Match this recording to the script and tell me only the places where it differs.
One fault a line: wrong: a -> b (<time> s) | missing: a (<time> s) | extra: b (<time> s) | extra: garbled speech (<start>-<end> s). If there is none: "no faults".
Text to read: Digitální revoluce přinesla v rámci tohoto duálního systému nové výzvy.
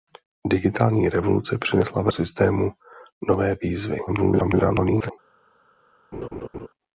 missing: rámci tohoto duálního (2.1 s)
extra: garbled speech (4.1-5.1 s)